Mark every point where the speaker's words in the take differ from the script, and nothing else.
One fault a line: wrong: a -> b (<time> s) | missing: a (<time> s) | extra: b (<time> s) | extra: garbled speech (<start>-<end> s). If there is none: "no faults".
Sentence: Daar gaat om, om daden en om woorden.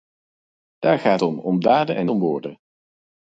no faults